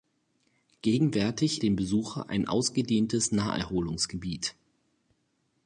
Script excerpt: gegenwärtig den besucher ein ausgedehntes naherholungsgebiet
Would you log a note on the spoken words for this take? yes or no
no